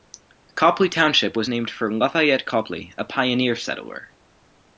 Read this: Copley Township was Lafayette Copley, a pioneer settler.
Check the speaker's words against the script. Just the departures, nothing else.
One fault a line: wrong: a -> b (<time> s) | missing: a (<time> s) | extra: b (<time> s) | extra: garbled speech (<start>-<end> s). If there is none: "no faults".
extra: named for (1.5 s)